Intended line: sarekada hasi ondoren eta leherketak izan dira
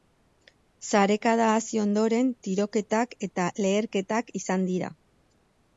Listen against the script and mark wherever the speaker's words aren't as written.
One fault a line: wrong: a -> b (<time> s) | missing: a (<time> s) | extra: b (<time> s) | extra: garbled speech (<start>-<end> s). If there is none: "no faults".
extra: tiroketak (2.5 s)